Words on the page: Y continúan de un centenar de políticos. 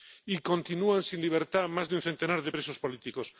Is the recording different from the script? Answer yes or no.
yes